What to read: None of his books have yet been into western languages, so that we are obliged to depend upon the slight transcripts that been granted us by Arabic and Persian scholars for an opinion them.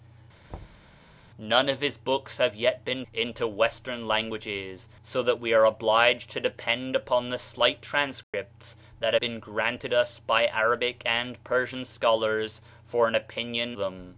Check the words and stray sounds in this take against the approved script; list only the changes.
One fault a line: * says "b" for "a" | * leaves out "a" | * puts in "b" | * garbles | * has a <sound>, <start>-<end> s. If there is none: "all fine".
* has a thud, 0.5-0.9 s
* has a dropout, 8.2-8.3 s